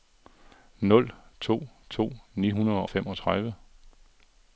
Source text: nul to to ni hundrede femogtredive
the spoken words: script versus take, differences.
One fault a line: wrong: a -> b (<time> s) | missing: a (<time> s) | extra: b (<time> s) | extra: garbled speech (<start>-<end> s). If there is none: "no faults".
no faults